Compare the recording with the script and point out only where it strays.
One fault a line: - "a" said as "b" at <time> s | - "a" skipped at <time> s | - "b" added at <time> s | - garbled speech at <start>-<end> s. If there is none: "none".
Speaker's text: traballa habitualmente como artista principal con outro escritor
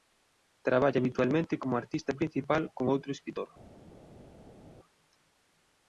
none